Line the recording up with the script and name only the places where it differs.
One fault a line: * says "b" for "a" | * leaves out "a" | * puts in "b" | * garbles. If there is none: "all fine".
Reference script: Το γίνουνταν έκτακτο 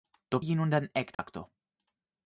all fine